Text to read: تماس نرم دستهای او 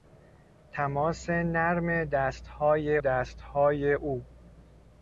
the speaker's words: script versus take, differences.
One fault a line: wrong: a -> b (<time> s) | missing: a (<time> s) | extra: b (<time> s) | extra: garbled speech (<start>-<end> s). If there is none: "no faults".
extra: دستهای (3.0 s)